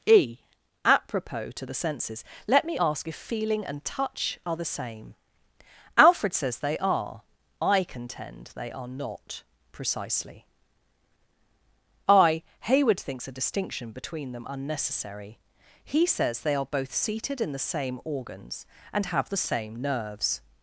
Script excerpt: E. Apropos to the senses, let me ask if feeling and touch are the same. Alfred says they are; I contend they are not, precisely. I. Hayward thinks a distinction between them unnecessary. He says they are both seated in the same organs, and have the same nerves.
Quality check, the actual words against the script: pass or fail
pass